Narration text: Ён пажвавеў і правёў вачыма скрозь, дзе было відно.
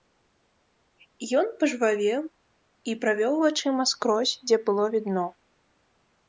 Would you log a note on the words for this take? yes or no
no